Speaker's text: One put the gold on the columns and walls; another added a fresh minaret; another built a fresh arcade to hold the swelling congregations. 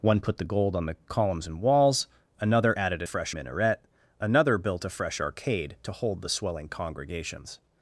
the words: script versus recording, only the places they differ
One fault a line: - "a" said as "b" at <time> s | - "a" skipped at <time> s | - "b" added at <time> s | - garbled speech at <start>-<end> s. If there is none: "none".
none